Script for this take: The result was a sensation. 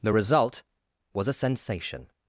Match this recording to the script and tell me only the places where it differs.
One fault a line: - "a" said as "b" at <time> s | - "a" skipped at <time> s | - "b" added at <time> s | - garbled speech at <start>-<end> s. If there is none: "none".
none